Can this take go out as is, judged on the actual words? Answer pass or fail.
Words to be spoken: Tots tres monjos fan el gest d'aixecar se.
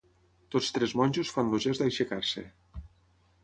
pass